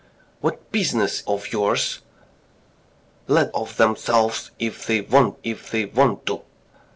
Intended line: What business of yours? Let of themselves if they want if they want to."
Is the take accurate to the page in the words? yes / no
yes